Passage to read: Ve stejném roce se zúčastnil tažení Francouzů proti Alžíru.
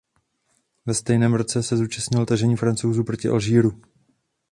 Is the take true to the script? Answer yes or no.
yes